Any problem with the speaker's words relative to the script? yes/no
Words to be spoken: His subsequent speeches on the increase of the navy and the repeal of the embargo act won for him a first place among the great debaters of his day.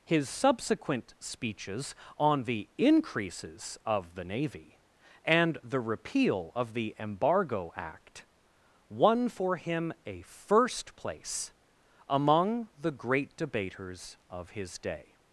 yes